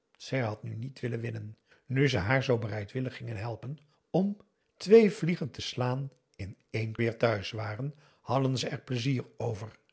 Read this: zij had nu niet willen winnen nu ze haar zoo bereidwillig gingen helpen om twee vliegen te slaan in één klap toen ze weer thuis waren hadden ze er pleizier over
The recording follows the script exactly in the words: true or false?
false